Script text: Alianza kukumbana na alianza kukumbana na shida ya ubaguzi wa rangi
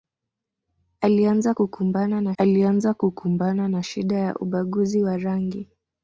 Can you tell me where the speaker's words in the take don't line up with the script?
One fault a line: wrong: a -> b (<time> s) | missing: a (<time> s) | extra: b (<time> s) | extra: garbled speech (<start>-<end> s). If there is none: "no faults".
no faults